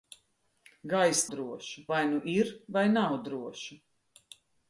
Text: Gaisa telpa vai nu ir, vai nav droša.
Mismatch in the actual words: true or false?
true